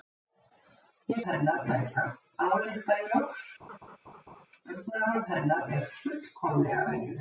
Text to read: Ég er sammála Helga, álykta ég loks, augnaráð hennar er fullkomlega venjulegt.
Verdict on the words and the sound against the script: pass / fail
fail